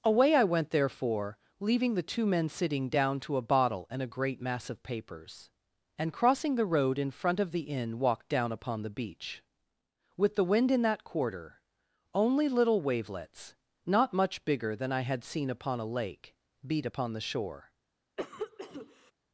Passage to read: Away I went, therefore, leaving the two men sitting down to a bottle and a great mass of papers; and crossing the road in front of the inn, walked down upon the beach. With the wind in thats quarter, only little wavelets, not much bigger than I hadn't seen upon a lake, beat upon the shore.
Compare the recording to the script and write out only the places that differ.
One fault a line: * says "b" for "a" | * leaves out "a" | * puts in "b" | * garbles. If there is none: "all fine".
* says "that" for "thats"
* says "had" for "hadn't"